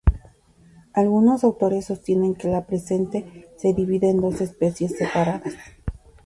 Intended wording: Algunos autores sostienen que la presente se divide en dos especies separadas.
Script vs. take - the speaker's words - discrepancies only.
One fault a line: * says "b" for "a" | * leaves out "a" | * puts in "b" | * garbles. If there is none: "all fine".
all fine